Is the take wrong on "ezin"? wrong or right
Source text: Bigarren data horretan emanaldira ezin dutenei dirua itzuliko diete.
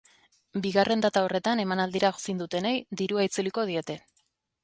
right